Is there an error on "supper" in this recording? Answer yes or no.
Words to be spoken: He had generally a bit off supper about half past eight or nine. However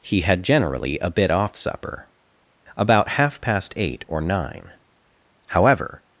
no